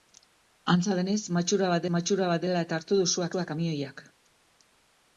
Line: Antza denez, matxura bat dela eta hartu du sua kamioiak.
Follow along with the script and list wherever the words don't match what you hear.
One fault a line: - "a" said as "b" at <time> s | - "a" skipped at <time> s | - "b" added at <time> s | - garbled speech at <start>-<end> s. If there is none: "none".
- "matxura bat" added at 2.0 s
- "sua" added at 3.3 s